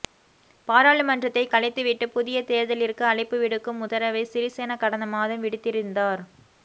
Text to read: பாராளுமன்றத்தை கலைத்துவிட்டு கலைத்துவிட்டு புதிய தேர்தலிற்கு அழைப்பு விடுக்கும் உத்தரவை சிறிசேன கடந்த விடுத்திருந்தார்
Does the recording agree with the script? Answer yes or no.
no